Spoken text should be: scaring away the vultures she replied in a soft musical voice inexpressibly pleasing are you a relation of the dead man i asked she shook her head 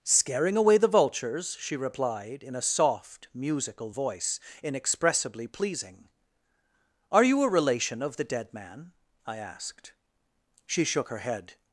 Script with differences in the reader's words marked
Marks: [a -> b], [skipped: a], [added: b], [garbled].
scaring away the vultures she replied in a soft musical voice inexpressibly pleasing are you a relation of the dead man i asked she shook her head